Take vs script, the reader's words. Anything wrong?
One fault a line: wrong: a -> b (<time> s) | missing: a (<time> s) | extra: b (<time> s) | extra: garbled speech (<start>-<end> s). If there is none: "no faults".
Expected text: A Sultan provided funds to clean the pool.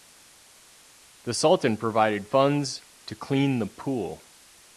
wrong: A -> The (1.2 s)